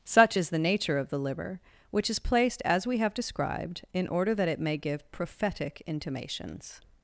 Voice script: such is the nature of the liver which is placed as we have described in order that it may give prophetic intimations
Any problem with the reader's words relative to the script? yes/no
no